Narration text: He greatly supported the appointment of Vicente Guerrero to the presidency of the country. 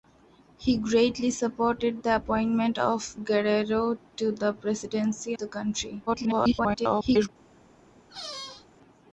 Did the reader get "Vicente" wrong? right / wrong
wrong